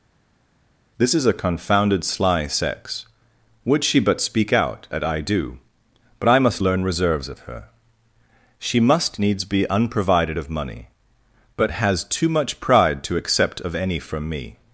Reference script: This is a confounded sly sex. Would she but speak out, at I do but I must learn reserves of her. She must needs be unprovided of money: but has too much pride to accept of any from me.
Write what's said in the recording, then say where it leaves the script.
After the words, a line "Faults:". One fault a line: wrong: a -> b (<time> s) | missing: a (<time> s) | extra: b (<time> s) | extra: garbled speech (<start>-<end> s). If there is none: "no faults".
This is a confounded sly sex. Would she but speak out, at I do but I must learn reserves of her. She must needs be unprovided of money: but has too much pride to accept of any from me.
Faults:
no faults